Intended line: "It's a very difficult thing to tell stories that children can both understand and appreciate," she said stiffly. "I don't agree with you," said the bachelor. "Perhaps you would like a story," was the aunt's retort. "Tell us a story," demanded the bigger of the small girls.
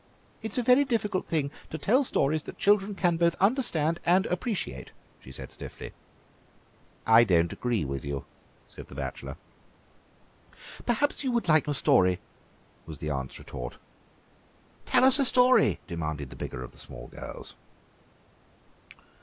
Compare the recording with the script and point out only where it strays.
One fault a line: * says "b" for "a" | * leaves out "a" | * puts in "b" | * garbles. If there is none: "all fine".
all fine